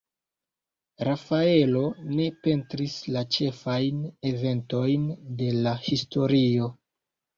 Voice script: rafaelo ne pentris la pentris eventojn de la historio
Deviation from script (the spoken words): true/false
true